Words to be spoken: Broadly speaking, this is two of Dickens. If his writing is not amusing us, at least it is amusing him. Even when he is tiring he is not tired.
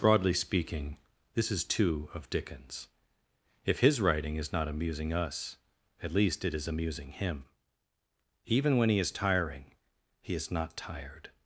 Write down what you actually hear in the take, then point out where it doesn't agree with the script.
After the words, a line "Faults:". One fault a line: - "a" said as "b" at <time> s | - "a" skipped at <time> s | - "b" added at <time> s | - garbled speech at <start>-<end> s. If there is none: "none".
Broadly speaking, this is two of Dickens. If his writing is not amusing us, at least it is amusing him. Even when he is tiring he is not tired.
Faults:
none